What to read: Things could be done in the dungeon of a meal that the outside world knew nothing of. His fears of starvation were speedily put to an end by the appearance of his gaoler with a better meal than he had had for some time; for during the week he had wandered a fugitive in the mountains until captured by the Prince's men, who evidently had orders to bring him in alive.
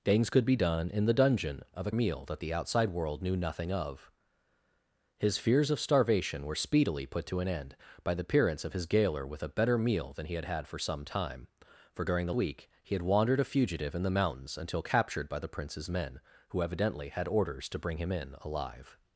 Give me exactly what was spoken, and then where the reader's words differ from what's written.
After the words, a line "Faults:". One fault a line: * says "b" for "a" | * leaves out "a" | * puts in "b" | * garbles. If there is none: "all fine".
Things could be done in the dungeon of a meal that the outside world knew nothing of. His fears of starvation were speedily put to an end by the appearance of his gaoler with a better meal than he had had for some time; for during the week he had wandered a fugitive in the mountains until captured by the Prince's men, who evidently had orders to bring him in alive.
Faults:
all fine